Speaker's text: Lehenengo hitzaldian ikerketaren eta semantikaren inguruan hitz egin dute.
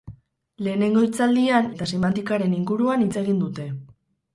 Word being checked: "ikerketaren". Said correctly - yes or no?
no